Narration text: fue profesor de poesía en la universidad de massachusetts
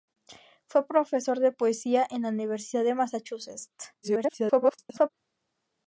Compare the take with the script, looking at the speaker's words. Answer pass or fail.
fail